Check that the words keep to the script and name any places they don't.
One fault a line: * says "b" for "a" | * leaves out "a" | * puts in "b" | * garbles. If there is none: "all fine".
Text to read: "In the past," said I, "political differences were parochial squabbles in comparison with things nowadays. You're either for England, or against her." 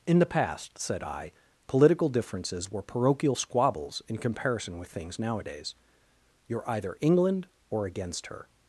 * leaves out "for"